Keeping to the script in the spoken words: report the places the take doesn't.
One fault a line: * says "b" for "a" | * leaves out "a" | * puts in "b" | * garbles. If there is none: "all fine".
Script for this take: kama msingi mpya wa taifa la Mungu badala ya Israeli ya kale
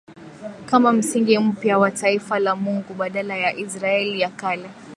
all fine